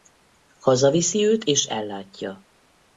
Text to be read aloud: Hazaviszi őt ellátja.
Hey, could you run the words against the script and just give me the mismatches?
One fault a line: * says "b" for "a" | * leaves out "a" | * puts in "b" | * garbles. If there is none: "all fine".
* puts in "és"